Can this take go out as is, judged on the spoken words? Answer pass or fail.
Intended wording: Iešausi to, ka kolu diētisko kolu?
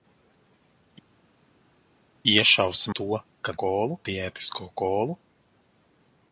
pass